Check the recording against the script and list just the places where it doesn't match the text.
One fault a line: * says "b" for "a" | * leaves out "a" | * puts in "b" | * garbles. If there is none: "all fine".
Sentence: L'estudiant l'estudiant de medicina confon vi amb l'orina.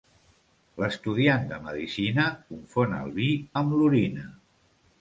* leaves out "l'estudiant"
* puts in "el"